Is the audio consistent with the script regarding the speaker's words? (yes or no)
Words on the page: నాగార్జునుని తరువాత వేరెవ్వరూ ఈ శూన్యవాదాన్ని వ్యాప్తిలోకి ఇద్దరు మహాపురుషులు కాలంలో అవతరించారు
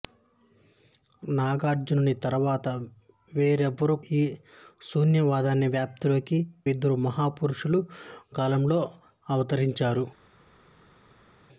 yes